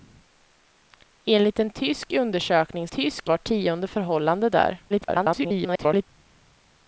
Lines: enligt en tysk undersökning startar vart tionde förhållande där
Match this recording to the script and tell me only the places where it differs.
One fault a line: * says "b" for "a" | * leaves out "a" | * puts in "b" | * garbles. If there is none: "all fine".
* says "tysk" for "startar"
* garbles